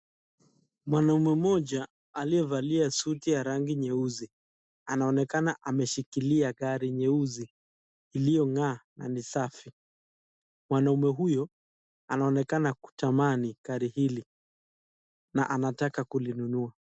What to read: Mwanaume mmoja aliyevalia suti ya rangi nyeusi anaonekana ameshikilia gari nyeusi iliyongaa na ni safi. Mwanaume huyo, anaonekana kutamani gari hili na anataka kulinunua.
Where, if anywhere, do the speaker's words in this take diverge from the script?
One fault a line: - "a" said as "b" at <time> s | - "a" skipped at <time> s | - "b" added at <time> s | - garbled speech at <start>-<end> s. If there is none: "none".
none